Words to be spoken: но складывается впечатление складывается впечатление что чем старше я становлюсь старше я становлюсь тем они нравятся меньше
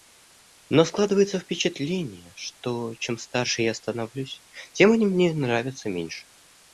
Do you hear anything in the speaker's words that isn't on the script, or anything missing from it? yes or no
yes